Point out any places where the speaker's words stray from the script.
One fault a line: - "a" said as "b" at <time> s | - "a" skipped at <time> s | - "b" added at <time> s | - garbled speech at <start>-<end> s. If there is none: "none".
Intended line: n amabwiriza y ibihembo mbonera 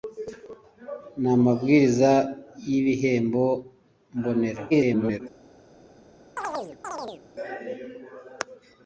- garbled speech at 4.7-5.2 s